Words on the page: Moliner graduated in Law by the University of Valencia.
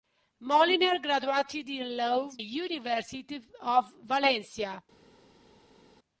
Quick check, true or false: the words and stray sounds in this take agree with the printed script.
false